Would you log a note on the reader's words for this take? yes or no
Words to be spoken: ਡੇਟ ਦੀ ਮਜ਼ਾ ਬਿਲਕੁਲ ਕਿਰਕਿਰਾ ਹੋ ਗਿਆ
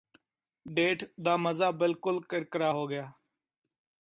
yes